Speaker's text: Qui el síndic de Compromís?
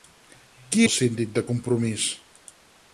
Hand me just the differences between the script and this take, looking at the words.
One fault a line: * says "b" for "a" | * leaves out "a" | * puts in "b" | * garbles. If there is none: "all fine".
all fine